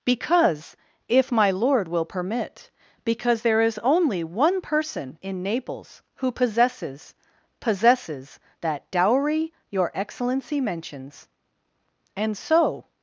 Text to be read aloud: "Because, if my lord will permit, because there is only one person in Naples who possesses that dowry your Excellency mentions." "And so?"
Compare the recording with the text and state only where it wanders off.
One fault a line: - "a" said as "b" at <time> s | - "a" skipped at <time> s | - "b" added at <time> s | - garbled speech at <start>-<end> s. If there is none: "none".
- "possesses" added at 7.6 s